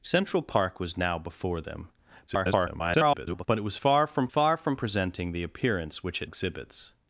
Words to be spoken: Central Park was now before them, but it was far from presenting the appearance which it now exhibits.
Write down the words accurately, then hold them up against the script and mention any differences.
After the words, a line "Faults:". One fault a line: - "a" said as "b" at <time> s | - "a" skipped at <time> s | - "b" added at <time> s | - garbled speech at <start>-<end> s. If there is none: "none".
Central Park was now before them, [garbled] but it was far from far from presenting the appearance which it exhibits.
Faults:
- garbled speech at 2.3-3.5 s
- "far from" added at 4.3 s
- "now" skipped at 6.3 s